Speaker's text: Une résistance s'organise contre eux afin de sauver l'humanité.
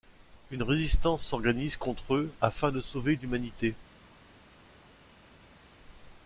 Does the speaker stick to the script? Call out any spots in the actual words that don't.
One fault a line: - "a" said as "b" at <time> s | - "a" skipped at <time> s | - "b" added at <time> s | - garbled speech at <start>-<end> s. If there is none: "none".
none